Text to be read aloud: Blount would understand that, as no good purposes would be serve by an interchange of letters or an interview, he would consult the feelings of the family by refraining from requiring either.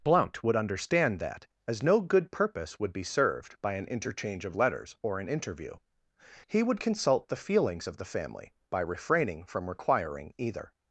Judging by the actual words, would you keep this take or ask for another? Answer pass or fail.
fail